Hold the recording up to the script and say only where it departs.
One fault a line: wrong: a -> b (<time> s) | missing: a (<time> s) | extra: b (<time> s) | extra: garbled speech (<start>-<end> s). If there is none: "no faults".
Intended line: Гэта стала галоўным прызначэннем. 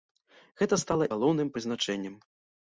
no faults